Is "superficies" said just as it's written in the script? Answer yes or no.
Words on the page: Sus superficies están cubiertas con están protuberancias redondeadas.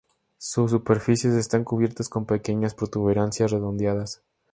yes